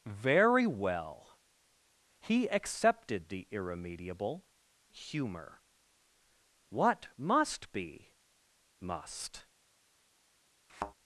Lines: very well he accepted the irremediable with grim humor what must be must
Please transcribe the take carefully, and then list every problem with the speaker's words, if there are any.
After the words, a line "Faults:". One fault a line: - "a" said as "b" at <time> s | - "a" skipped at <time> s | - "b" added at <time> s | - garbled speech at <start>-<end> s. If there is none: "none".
very well he accepted the irremediable humor what must be must
Faults:
- "with grim" skipped at 4.5 s